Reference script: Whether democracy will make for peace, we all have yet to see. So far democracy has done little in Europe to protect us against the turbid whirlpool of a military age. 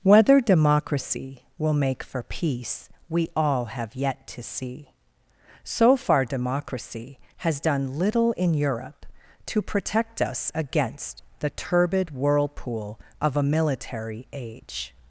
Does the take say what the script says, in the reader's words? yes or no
yes